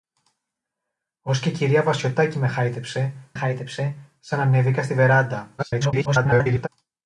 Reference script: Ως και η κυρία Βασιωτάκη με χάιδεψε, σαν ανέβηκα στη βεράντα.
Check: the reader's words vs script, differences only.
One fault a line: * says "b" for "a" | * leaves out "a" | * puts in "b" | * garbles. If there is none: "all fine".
* puts in "χάιδεψε"
* garbles